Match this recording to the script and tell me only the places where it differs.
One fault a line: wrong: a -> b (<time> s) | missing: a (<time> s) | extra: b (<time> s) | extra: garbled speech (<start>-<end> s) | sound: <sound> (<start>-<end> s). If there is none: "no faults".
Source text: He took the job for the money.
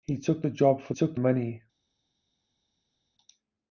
wrong: the -> took (0.9 s)